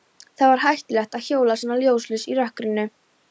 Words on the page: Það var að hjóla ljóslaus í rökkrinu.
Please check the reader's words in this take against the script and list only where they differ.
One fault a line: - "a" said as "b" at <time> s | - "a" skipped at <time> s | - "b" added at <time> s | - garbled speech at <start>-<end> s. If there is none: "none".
- "hættulegt" added at 0.6 s
- "svona" added at 1.6 s